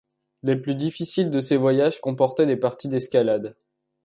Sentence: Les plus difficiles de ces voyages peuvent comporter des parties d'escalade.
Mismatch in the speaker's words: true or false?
true